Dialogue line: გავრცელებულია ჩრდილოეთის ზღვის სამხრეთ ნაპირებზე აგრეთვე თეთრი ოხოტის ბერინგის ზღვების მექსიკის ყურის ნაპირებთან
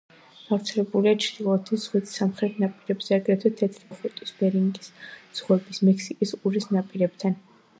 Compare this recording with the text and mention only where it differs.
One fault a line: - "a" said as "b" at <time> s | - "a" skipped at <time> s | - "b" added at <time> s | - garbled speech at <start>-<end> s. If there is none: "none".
none